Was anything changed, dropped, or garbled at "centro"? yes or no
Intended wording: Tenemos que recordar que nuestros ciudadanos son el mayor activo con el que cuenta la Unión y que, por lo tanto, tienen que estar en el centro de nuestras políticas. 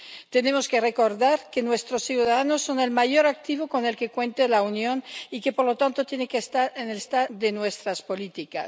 yes